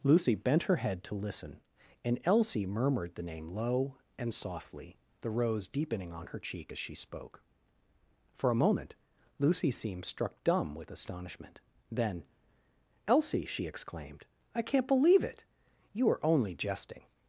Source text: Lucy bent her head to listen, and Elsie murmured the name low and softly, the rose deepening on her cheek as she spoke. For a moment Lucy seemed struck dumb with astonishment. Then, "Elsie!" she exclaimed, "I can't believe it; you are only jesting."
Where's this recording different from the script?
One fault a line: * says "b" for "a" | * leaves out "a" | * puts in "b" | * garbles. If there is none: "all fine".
all fine